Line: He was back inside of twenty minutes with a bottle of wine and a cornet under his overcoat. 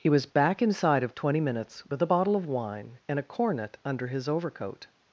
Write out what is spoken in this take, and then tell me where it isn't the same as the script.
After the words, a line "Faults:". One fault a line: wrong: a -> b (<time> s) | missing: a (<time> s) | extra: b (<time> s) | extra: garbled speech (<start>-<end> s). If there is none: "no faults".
He was back inside of twenty minutes with a bottle of wine and a cornet under his overcoat.
Faults:
no faults